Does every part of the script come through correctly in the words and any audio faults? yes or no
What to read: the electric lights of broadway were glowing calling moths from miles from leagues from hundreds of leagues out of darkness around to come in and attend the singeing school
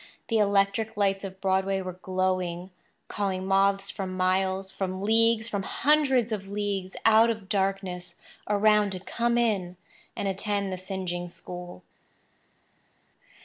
yes